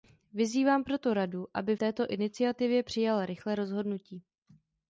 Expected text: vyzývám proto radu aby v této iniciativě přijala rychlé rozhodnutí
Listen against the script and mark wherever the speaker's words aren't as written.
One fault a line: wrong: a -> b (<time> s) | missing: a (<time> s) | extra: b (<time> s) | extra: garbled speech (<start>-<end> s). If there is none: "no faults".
missing: v (1.8 s)